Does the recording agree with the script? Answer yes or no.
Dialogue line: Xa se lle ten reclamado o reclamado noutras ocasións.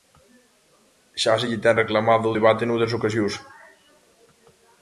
no